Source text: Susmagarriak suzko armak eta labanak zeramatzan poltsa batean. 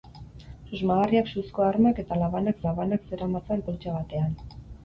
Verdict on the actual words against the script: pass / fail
fail